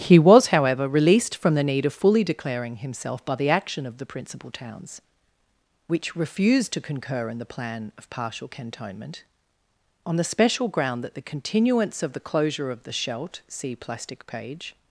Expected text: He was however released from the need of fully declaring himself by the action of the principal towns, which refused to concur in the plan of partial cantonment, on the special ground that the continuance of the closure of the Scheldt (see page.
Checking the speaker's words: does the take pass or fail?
fail